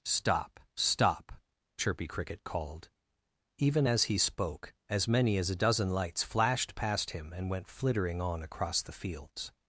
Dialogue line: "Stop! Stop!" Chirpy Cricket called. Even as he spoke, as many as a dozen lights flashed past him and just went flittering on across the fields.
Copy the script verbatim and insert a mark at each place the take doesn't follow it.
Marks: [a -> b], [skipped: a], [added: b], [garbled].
"Stop! Stop!" Chirpy Cricket called. Even as he spoke, as many as a dozen lights flashed past him and [skipped: just] went flittering on across the fields.